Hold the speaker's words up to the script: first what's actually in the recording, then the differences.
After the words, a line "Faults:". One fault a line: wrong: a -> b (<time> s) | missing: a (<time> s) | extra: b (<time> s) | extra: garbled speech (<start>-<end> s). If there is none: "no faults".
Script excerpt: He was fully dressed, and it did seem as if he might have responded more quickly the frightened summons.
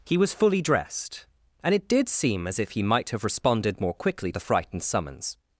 He was fully dressed, and it did seem as if he might have responded more quickly the frightened summons.
Faults:
no faults